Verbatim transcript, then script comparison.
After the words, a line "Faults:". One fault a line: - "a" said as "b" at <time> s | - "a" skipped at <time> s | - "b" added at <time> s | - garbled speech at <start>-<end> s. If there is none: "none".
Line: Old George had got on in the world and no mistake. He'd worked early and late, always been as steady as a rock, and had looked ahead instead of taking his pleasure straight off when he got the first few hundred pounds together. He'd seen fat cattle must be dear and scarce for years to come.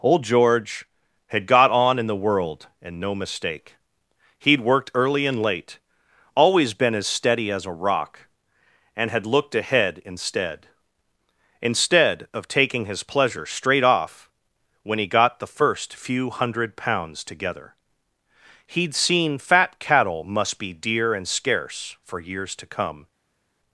Old George had got on in the world and no mistake. He'd worked early and late, always been as steady as a rock, and had looked ahead instead instead of taking his pleasure straight off when he got the first few hundred pounds together. He'd seen fat cattle must be dear and scarce for years to come.
Faults:
- "instead" added at 11.6 s